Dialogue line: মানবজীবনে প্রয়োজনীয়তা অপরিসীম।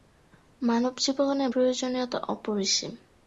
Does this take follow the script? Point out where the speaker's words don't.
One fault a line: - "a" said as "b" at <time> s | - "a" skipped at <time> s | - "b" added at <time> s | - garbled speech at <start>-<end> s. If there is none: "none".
none